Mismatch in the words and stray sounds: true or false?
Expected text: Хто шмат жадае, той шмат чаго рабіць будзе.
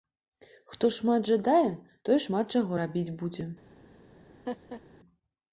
true